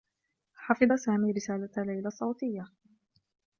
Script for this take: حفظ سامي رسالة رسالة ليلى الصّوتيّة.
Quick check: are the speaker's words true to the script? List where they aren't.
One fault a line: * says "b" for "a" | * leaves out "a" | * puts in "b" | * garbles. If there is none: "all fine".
* leaves out "رسالة"